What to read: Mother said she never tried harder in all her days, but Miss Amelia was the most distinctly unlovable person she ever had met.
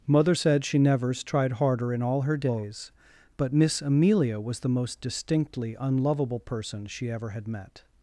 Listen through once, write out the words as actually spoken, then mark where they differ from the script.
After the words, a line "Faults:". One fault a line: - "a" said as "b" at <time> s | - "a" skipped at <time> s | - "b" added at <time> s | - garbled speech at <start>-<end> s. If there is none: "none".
Mother said she nevers tried harder in all her days, but Miss Amelia was the most distinctly unlovable person she ever had met.
Faults:
- "never" said as "nevers" at 0.8 s